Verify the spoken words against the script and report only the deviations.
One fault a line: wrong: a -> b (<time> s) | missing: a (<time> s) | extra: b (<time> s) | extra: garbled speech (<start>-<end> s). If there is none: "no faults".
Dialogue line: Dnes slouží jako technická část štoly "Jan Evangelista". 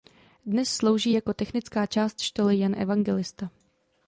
no faults